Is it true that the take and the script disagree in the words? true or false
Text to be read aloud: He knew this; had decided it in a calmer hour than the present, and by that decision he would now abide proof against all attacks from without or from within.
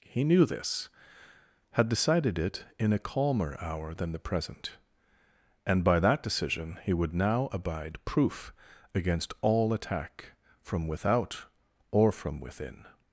true